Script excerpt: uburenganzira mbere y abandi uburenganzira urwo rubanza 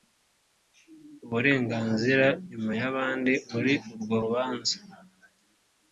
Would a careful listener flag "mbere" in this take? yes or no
yes